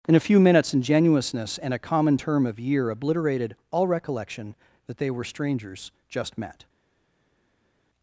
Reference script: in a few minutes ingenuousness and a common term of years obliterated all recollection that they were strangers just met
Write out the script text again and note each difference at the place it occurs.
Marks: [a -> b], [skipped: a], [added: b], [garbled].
in a few minutes ingenuousness and a common term of [years -> year] obliterated all recollection that they were strangers just met